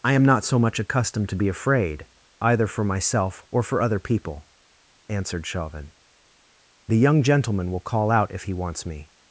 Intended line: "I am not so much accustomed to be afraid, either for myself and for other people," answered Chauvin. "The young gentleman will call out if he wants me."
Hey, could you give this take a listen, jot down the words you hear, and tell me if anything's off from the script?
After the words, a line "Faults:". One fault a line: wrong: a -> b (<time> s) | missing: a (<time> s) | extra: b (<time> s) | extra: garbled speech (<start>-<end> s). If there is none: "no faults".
"I am not so much accustomed to be afraid, either for myself or for other people," answered Chauvin. "The young gentleman will call out if he wants me."
Faults:
wrong: and -> or (3.5 s)